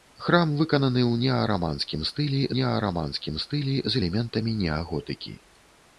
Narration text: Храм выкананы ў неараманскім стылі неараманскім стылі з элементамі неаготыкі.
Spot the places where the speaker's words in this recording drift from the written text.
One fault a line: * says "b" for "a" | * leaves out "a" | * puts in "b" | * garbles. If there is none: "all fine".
all fine